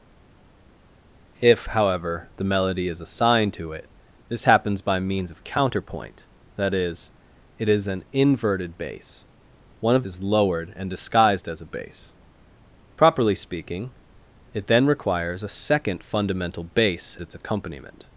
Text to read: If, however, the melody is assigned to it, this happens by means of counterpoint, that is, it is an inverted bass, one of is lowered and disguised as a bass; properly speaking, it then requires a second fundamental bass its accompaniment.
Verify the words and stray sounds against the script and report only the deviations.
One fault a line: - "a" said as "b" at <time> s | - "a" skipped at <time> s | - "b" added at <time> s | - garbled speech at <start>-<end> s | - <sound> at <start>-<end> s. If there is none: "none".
none